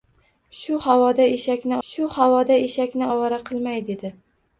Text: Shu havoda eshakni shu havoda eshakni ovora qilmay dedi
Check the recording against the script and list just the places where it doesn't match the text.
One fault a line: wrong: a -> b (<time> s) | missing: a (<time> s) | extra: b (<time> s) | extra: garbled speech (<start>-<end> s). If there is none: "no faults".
no faults